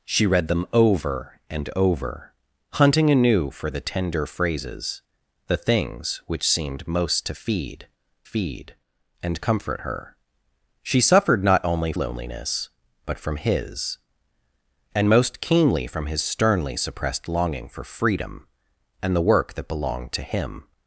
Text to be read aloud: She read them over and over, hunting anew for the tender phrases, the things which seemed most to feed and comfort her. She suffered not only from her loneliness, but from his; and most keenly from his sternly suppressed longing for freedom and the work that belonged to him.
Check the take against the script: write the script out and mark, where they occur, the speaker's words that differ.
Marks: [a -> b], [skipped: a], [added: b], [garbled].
She read them over and over, hunting anew for the tender phrases, the things which seemed most to feed [added: feed] and comfort her. She suffered not only [skipped: from her] loneliness, but from his; and most keenly from his sternly suppressed longing for freedom and the work that belonged to him.